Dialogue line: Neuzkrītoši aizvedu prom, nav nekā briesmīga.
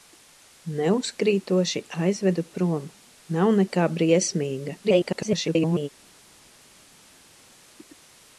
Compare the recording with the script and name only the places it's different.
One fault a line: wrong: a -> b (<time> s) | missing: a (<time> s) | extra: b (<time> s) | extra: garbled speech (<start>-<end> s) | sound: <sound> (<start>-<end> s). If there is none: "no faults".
extra: garbled speech (4.8-5.9 s)